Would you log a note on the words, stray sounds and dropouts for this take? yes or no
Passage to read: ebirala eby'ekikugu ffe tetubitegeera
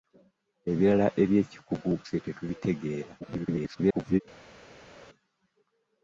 yes